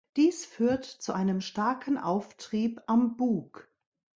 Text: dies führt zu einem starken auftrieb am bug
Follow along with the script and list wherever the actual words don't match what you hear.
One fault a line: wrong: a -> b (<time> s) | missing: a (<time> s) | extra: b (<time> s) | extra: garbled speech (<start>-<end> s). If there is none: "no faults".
no faults